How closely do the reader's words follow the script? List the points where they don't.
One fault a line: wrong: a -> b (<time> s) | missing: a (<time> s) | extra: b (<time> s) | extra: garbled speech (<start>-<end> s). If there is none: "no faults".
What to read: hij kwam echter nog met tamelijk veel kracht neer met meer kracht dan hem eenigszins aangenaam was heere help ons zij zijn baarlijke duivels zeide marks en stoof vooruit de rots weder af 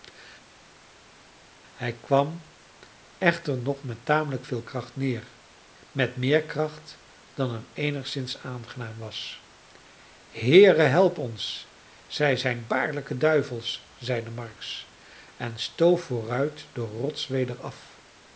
no faults